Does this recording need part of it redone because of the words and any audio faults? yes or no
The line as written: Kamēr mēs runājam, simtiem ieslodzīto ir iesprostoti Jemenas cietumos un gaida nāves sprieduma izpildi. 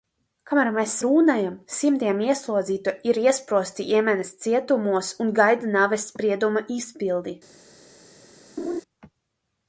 yes